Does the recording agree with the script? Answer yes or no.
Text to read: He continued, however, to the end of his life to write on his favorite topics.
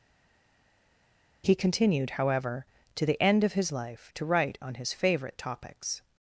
yes